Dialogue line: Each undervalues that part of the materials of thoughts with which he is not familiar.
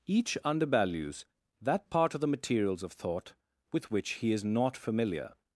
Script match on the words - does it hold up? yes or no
no